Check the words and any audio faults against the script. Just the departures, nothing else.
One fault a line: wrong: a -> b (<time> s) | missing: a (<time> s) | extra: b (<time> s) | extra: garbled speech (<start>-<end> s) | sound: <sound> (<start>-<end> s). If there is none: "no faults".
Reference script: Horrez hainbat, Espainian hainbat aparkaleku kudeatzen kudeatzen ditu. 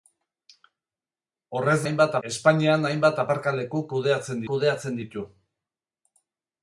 no faults